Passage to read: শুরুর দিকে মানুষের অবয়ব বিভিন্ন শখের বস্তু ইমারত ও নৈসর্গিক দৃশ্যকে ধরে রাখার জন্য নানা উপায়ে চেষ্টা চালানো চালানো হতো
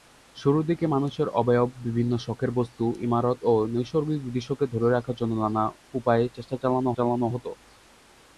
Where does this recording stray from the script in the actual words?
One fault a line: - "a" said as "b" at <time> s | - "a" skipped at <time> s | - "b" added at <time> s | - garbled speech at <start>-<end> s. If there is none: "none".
none